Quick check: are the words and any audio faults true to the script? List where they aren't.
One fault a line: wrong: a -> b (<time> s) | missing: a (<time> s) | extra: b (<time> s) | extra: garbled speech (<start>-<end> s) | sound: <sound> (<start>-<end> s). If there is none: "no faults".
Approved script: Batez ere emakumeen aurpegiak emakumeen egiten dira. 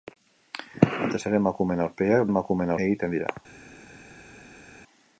no faults